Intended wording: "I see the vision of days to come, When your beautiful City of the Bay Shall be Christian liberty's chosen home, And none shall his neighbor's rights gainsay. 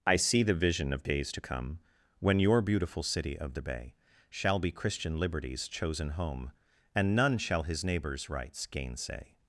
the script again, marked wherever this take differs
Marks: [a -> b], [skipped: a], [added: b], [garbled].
"I see the vision of days to come, When your beautiful City of the Bay Shall be Christian liberty's chosen home, And none shall his neighbor's rights gainsay.